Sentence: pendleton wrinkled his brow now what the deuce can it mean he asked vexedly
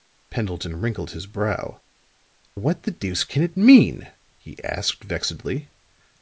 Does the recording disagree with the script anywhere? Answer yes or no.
yes